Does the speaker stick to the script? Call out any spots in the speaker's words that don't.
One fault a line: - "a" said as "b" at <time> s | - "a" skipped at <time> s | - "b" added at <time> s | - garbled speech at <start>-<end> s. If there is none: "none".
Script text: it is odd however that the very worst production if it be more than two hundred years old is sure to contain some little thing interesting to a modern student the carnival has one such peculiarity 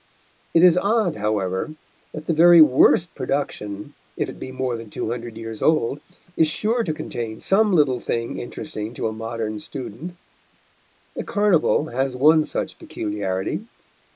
none